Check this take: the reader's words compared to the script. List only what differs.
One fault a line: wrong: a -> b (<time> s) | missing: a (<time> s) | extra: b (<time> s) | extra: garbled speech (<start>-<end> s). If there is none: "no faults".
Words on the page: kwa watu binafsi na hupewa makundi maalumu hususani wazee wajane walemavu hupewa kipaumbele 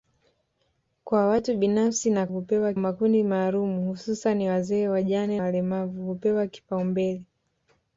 no faults